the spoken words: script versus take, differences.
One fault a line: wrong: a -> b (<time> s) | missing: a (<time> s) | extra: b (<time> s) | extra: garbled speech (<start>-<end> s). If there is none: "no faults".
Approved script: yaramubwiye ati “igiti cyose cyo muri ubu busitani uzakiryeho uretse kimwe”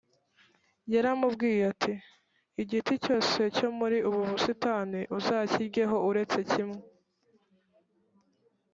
no faults